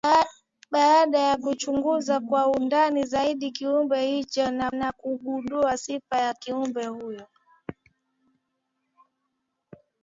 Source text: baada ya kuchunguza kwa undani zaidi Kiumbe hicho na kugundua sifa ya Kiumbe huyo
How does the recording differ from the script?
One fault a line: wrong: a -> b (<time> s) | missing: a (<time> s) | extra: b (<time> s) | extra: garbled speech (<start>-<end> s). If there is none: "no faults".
extra: na (4.7 s)